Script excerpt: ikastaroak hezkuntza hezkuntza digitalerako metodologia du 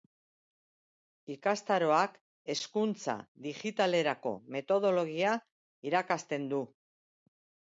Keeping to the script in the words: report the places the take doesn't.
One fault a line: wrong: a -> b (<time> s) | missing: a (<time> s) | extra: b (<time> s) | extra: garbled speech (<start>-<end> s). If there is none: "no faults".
missing: hezkuntza (3.2 s)
extra: irakasten (5.9 s)